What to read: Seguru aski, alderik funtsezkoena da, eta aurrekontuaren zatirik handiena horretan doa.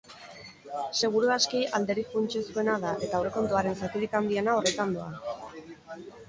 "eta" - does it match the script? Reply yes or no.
yes